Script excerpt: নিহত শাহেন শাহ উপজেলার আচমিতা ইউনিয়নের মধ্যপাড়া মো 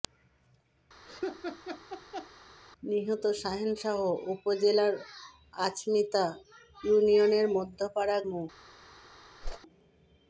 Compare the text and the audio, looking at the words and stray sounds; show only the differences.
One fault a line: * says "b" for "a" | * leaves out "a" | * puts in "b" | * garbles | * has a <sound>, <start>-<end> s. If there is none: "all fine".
* has a laugh, 1.1-2.3 s
* has a whoosh, 9.4-9.6 s